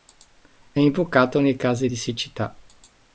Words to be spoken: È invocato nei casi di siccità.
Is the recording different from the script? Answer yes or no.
no